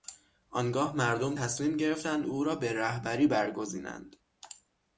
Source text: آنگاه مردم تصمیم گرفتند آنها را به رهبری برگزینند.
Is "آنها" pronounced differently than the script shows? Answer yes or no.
yes